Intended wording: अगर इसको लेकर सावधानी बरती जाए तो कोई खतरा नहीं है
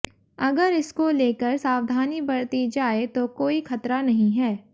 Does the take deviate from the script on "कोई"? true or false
false